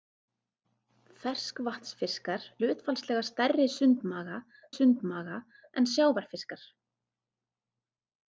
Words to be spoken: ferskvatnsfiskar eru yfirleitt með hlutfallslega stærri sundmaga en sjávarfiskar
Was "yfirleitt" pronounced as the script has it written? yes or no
no